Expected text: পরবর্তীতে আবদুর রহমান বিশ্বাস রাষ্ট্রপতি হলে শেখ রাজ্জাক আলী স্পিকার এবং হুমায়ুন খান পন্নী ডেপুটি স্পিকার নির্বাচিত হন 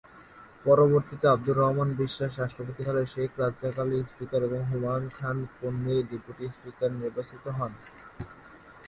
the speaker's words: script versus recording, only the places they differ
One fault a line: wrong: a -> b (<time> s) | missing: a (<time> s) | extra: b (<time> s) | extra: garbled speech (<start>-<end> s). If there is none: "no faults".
no faults